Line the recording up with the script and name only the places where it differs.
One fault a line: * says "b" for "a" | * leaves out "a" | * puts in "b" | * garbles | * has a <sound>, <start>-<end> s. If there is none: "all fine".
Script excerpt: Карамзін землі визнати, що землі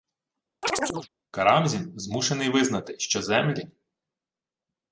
* has a chirp, 0.6-1.1 s
* says "змушений" for "землі"